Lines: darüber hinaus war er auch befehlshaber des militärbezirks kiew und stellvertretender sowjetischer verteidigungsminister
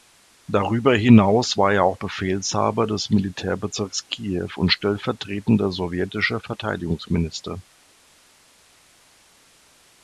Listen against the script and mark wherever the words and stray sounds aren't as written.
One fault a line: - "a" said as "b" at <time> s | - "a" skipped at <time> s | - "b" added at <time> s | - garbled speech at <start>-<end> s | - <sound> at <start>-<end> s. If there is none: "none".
none